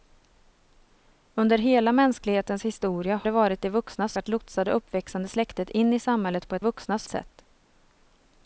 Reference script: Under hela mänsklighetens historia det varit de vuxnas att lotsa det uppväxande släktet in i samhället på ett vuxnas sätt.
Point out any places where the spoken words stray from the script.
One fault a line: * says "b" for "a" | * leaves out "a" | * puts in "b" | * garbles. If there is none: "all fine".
all fine